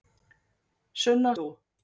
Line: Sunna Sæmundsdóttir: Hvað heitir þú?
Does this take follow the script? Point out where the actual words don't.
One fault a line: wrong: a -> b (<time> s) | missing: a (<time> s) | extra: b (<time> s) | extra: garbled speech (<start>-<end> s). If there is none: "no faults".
missing: Sæmundsdóttir Hvað heitir (1.4 s)